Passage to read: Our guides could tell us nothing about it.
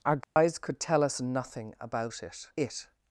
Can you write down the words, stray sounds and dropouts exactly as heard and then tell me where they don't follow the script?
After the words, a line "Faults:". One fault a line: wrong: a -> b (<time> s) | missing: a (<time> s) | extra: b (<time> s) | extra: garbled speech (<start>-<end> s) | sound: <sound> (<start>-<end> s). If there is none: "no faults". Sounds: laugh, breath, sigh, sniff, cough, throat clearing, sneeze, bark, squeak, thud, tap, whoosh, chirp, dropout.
Our guides could tell us nothing about it it.
Faults:
sound: dropout (0.2-0.4 s)
extra: it (2.6 s)